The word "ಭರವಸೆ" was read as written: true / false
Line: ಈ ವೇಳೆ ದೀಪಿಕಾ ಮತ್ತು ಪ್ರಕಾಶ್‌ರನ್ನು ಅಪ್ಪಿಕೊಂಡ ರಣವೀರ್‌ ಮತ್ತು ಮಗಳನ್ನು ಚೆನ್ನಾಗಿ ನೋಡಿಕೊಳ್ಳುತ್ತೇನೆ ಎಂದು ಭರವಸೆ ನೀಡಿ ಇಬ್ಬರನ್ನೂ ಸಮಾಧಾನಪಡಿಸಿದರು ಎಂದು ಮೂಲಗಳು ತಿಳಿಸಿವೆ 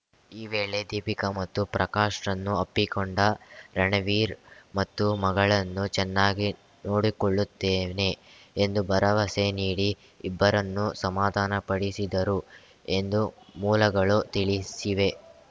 true